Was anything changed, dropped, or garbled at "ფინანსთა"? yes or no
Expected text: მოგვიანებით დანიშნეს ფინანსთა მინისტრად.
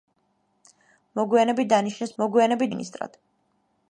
yes